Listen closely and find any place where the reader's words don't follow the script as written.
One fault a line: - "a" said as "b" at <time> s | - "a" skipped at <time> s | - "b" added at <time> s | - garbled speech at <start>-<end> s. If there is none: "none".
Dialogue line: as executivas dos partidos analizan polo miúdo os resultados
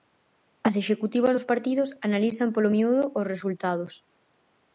none